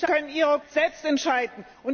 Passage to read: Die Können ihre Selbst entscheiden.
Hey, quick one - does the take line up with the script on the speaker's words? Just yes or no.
yes